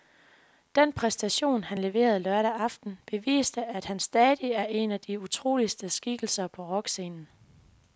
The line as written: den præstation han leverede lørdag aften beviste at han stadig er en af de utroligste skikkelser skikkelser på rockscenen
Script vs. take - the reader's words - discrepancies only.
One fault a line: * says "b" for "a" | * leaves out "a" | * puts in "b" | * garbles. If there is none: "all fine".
* leaves out "skikkelser"